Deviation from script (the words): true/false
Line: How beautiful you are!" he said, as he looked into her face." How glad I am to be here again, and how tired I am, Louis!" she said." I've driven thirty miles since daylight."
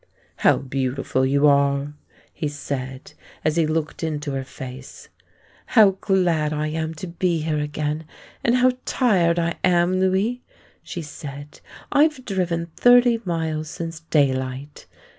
false